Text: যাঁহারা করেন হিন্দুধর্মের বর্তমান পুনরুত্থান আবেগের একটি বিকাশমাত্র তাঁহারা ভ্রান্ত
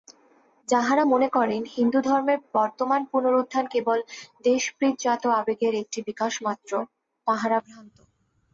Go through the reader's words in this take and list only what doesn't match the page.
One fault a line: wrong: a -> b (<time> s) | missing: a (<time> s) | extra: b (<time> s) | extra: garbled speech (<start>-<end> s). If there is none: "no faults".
extra: মনে (1.0 s)
extra: কেবল দেশপ্রীতিজাত (3.7 s)